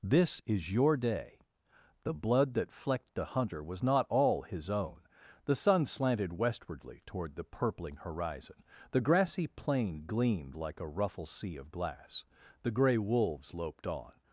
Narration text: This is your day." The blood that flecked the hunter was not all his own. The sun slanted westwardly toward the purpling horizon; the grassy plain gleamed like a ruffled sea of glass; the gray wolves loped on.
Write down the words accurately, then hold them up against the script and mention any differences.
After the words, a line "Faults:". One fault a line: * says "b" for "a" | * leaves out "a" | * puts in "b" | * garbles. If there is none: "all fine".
This is your day." The blood that flecked the hunter was not all his own. The sun slanted westwardly toward the purpling horizon; the grassy plain gleamed like a ruffle sea of glass; the gray wolves loped on.
Faults:
* says "ruffle" for "ruffled"